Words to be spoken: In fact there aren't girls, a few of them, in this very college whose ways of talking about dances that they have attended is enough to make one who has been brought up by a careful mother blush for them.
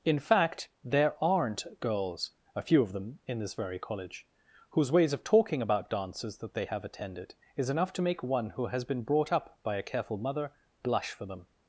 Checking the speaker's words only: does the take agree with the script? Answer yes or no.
yes